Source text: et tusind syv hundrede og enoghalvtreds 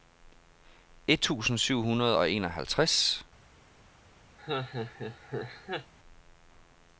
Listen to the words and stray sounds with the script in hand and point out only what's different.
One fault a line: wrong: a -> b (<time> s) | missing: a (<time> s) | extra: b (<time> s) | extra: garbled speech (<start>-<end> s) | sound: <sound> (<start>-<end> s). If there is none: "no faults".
sound: laugh (4.4-5.9 s)